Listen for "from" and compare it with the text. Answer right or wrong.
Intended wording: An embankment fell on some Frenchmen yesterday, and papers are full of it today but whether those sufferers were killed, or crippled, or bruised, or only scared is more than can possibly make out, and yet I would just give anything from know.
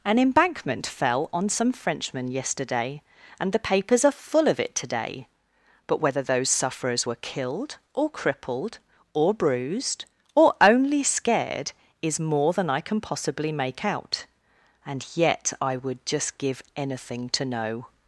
wrong